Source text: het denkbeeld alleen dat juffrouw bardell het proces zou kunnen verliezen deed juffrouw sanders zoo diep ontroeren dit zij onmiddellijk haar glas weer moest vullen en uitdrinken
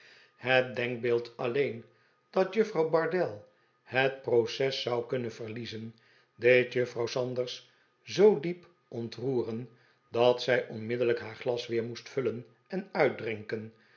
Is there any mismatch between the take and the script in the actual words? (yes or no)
yes